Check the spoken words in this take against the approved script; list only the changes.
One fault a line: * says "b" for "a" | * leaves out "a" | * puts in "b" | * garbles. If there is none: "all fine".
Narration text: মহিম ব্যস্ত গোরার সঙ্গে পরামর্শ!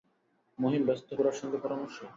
all fine